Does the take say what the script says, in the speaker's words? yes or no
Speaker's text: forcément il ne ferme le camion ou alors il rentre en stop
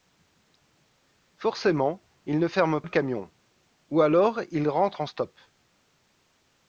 yes